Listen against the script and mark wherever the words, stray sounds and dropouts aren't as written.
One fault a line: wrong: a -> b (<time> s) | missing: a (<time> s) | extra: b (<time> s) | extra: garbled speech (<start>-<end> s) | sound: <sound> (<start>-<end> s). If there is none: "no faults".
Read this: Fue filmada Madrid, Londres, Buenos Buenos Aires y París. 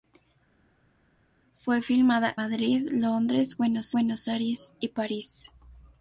no faults